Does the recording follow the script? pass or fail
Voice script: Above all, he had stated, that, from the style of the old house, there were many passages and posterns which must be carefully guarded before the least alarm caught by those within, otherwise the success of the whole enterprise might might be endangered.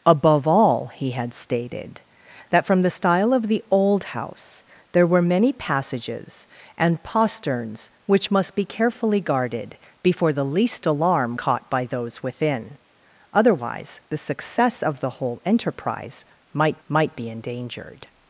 pass